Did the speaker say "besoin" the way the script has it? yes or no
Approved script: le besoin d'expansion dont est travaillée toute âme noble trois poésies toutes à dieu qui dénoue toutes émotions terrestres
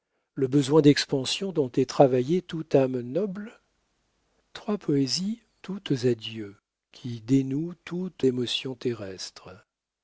yes